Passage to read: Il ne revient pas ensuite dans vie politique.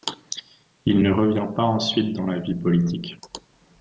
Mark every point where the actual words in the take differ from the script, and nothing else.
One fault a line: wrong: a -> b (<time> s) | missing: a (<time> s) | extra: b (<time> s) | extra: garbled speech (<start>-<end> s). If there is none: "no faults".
extra: la (2.3 s)